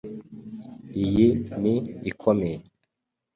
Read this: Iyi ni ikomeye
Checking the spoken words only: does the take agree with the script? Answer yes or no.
yes